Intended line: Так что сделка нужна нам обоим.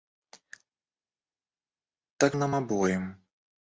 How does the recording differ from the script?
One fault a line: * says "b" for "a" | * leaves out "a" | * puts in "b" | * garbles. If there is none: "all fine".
* leaves out "что сделка нужна"